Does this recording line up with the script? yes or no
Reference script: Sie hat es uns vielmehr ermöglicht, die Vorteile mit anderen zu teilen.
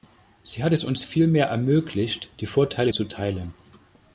no